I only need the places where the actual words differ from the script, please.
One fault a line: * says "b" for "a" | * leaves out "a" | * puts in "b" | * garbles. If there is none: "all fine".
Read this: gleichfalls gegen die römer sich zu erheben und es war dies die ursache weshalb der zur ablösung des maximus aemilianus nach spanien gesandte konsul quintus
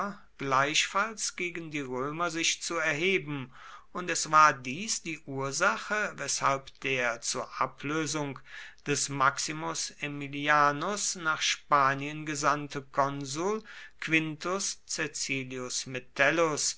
all fine